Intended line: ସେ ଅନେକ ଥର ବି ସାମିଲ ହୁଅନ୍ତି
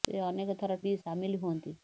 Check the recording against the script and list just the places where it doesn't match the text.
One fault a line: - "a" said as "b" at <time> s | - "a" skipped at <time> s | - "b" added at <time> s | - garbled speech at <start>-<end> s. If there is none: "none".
none